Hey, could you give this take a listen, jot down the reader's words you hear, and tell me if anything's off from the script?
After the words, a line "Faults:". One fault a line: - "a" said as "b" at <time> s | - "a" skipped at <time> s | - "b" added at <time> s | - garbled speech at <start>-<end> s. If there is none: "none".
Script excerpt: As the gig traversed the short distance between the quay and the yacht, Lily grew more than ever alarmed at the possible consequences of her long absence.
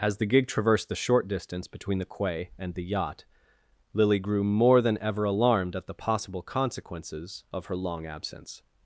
As the gig traversed the short distance between the quay and the yacht, Lily grew more than ever alarmed at the possible consequences of her long absence.
Faults:
none